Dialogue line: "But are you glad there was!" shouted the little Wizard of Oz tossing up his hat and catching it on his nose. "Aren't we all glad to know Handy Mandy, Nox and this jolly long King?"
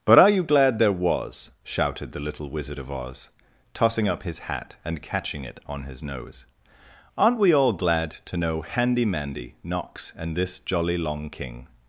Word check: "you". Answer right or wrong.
right